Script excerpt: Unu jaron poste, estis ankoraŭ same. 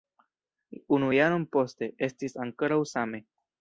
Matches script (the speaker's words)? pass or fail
pass